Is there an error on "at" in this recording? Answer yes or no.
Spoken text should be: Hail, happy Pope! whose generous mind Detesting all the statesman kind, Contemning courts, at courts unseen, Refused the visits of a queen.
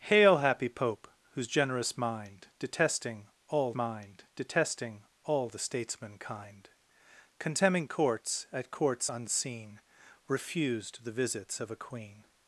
no